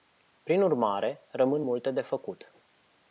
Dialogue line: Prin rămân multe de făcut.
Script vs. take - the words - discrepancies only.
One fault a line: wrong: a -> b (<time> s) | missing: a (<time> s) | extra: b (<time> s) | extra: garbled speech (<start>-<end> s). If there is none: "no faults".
extra: urmare (0.6 s)